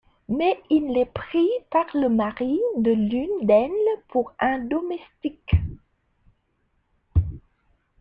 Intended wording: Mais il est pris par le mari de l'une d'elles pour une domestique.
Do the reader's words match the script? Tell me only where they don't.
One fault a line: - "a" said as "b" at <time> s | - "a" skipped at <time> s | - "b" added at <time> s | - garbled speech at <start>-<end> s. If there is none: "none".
- "une" said as "un" at 4.4 s